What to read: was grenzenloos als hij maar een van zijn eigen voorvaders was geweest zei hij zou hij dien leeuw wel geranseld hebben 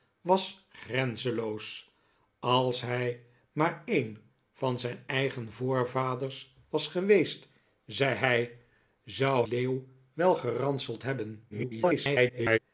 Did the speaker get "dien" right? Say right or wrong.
wrong